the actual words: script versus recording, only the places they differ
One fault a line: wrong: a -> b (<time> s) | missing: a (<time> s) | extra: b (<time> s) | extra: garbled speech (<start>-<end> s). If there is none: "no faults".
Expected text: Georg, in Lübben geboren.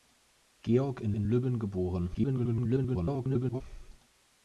extra: in (1.1 s)
extra: garbled speech (2.1-3.6 s)